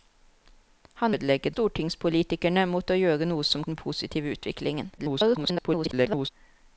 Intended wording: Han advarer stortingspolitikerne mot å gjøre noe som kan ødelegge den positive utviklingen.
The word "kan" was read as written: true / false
false